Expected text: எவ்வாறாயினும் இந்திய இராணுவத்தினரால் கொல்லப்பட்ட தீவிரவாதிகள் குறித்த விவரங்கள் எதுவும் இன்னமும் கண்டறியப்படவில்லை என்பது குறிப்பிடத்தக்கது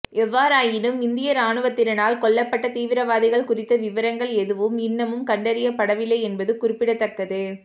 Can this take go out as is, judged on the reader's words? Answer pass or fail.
pass